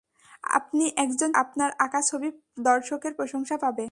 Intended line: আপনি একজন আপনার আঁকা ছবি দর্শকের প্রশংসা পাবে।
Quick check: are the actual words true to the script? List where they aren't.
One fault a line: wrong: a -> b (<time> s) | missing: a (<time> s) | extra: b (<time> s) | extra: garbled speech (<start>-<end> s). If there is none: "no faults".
no faults